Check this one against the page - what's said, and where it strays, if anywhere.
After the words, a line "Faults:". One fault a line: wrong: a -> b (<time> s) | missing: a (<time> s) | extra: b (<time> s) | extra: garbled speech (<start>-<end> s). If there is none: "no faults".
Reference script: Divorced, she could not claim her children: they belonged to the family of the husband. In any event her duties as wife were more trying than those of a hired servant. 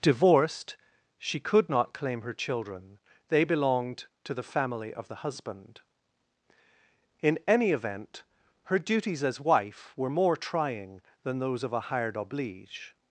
Divorced, she could not claim her children: they belonged to the family of the husband. In any event her duties as wife were more trying than those of a hired oblige.
Faults:
wrong: servant -> oblige (12.2 s)